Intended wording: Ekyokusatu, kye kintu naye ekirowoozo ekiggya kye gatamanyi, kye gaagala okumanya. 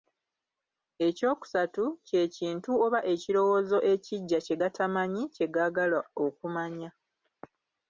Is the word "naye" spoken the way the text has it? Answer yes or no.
no